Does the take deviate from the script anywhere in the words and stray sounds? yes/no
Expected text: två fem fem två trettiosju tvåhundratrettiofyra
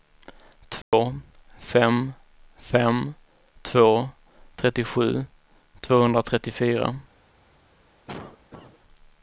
yes